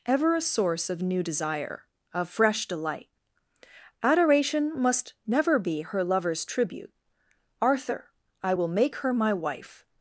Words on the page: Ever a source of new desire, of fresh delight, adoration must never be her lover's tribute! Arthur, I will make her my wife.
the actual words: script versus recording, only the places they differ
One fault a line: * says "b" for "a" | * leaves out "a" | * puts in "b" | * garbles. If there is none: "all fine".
all fine